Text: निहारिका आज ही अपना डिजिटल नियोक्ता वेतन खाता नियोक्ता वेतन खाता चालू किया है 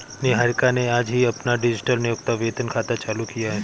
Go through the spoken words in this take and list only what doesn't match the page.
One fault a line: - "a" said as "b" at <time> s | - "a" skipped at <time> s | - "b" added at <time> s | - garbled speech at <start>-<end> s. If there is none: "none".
- "ने" added at 0.7 s
- "नियोक्ता वेतन खाता" skipped at 2.9 s